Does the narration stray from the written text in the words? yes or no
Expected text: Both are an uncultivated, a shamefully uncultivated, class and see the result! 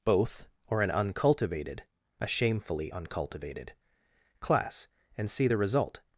yes